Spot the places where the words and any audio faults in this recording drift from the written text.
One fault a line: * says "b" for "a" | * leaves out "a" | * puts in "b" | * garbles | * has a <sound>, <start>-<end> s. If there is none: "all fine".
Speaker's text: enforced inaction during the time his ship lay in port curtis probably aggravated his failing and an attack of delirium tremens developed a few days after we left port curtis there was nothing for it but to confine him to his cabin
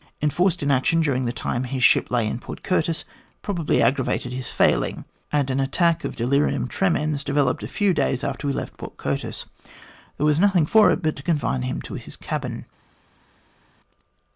all fine